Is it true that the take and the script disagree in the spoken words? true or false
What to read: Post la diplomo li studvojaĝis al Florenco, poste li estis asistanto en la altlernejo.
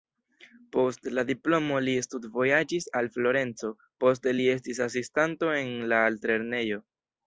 false